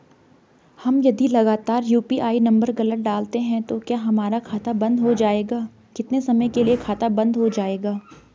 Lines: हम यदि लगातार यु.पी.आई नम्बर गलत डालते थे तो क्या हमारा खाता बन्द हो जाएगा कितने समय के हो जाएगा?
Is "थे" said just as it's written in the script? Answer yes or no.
no